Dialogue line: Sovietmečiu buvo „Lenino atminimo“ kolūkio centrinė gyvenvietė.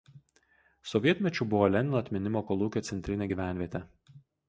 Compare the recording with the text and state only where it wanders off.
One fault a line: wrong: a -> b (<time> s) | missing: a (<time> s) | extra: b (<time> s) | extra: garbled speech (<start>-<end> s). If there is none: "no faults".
no faults